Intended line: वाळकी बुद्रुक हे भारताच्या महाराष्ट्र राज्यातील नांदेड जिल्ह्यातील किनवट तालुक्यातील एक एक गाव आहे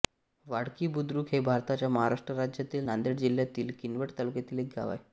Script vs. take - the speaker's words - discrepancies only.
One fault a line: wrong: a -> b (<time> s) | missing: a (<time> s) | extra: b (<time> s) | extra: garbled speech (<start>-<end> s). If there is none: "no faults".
missing: एक (4.7 s)